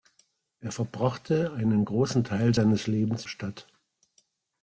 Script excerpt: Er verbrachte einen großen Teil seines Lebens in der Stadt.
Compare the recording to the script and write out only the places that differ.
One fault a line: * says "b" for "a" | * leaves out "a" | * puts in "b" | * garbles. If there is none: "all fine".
* leaves out "in der"